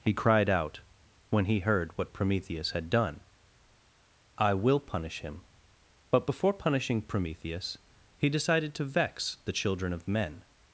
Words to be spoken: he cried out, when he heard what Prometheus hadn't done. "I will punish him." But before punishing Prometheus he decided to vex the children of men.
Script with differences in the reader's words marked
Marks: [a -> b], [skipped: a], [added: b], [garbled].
he cried out, when he heard what Prometheus [hadn't -> had] done. "I will punish him." But before punishing Prometheus he decided to vex the children of men.